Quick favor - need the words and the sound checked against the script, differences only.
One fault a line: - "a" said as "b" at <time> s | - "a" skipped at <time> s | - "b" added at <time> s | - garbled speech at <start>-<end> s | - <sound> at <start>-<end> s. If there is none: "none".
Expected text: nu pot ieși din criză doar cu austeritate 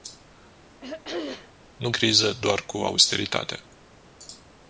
- throat clearing at 0.8-1.5 s
- "pot ieși din" skipped at 1.9 s